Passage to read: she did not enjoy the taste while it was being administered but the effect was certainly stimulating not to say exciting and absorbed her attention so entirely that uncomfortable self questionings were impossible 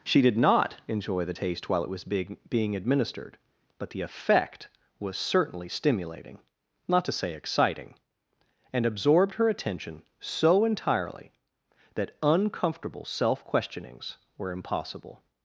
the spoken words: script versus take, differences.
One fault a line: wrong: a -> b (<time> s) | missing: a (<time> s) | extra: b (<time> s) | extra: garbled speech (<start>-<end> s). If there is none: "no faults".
extra: being (2.5 s)